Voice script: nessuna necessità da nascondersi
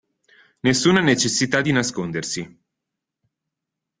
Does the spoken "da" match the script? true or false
false